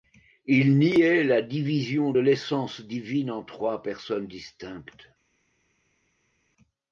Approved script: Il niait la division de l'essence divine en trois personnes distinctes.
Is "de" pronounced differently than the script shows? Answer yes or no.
yes